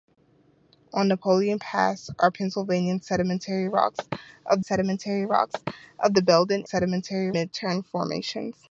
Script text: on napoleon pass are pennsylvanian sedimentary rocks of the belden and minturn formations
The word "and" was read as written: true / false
false